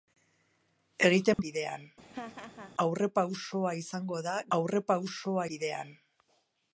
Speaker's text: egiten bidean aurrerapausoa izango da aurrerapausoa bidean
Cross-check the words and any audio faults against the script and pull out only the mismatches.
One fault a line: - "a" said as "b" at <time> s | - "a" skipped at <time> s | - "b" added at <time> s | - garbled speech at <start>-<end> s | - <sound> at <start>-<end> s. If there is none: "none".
- dropout at 1.3-1.4 s
- laugh at 2.0-2.7 s